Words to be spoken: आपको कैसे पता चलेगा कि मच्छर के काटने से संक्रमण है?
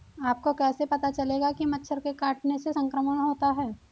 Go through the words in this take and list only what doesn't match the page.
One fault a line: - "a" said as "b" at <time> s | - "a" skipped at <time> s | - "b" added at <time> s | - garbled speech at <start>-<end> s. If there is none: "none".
- "होता" added at 3.2 s